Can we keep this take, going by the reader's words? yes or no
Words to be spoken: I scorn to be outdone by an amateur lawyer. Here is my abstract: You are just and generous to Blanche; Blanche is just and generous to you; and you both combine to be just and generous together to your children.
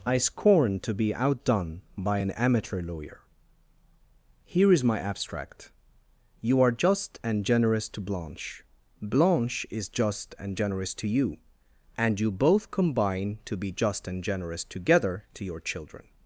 yes